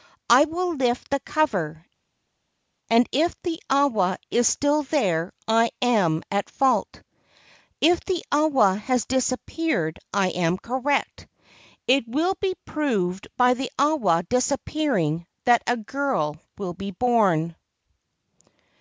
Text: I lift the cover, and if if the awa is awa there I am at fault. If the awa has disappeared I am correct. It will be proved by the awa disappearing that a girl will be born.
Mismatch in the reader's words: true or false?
true